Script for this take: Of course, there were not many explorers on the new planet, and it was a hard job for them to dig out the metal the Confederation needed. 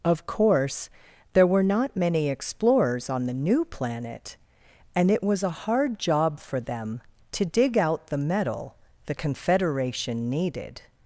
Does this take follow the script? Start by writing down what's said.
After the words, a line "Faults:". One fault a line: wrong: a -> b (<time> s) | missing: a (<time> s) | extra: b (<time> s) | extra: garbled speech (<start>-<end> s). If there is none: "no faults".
Of course, there were not many explorers on the new planet, and it was a hard job for them to dig out the metal the Confederation needed.
Faults:
no faults